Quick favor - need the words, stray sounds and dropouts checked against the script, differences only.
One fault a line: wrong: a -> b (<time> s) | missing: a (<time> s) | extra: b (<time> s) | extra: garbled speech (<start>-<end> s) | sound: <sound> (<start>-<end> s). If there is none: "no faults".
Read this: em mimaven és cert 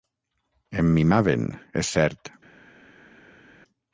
no faults